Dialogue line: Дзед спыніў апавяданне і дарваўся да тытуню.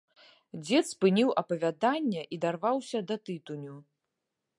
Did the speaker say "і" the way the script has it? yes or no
yes